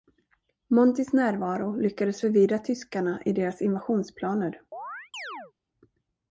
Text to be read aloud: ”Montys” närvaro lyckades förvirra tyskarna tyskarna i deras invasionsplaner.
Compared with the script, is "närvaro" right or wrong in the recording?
right